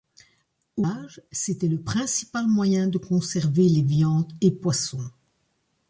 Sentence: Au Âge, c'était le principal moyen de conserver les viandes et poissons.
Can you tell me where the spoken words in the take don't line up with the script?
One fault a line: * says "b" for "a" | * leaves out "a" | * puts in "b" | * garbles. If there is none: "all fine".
all fine